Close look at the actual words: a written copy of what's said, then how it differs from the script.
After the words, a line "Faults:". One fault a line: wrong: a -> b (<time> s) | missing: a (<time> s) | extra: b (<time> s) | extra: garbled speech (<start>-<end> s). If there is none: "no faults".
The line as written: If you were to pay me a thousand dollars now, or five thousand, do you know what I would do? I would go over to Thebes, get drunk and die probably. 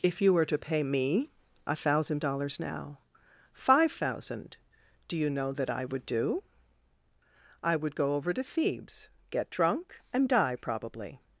If you were to pay me a thousand dollars now, five thousand, do you know that I would do? I would go over to Thebes, get drunk and die probably.
Faults:
missing: or (3.0 s)
wrong: what -> that (5.5 s)